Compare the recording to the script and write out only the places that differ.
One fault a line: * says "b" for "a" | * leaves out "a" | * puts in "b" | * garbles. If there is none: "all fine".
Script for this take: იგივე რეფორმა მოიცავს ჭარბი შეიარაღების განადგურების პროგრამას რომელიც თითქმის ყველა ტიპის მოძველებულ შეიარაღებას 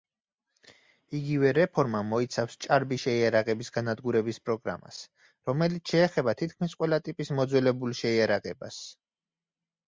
* puts in "შეეხება"